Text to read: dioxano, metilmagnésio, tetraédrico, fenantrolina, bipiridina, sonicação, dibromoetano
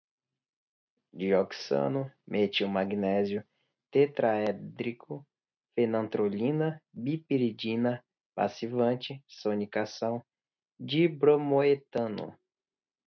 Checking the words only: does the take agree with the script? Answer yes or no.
no